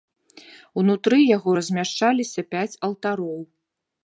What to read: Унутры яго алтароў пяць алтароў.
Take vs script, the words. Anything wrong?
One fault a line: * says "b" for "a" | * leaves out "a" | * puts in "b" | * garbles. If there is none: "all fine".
* says "размяшчаліся" for "алтароў"